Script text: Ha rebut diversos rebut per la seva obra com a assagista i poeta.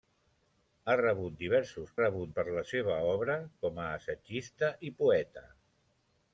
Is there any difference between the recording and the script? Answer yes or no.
no